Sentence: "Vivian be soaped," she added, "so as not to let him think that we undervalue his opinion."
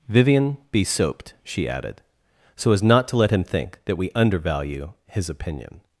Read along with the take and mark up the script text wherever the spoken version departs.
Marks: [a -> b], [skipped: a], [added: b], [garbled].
"Vivian be soaped," she added, "so as not to let him think that we undervalue his opinion."